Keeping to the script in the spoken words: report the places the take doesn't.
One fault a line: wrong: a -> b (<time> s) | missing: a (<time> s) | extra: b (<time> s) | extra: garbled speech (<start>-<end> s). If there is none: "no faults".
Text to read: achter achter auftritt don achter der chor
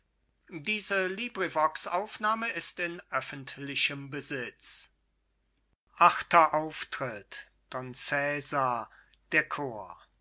missing: achter (6.5 s)
wrong: achter -> cesar (7.9 s)